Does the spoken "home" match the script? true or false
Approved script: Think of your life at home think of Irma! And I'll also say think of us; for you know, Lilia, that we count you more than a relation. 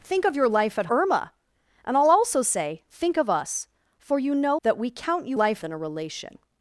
false